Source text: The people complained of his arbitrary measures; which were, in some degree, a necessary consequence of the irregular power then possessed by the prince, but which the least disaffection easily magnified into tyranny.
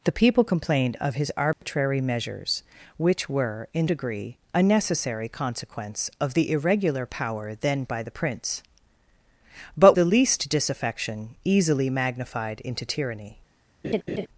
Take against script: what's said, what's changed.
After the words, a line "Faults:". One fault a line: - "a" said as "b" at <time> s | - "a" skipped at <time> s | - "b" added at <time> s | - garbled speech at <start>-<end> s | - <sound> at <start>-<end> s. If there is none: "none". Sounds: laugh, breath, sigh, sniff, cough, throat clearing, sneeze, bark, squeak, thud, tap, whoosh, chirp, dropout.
The people complained of his arbitrary measures; which were, in degree, a necessary consequence of the irregular power then by the prince, but the least disaffection easily magnified into tyranny.
Faults:
- dropout at 1.5-1.6 s
- "some" skipped at 3.9 s
- "possessed" skipped at 7.8 s
- "which" skipped at 10.0 s
- laugh at 13.8-14.3 s